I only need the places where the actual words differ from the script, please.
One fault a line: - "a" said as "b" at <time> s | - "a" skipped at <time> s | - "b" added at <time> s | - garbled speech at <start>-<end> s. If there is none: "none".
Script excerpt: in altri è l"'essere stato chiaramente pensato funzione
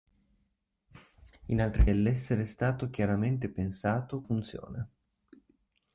none